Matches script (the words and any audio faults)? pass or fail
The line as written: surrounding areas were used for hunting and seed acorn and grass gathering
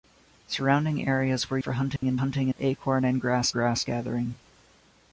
fail